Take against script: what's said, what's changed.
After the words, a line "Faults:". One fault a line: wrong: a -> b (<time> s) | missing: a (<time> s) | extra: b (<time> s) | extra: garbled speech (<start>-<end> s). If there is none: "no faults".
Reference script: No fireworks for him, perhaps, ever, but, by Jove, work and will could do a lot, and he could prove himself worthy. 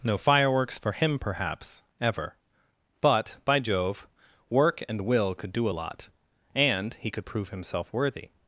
No fireworks for him, perhaps, ever, but, by Jove, work and will could do a lot, and he could prove himself worthy.
Faults:
no faults